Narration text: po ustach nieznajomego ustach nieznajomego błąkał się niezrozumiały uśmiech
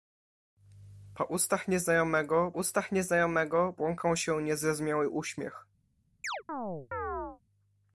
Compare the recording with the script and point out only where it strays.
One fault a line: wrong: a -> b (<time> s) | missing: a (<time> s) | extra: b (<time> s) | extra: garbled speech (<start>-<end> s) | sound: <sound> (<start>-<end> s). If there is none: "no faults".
sound: chirp (6.2-7.4 s)